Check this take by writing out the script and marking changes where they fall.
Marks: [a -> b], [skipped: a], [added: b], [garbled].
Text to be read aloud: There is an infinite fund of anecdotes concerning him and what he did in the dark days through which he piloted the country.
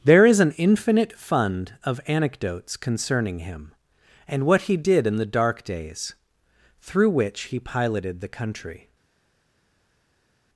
There is an infinite fund of anecdotes concerning him and what he did in the dark days through which he piloted the country.